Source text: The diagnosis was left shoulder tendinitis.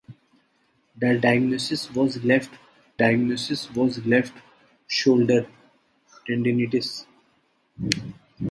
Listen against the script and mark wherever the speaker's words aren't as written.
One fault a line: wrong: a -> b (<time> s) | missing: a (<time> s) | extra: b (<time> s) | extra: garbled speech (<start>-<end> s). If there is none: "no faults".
extra: diagnosis was left (3.0 s)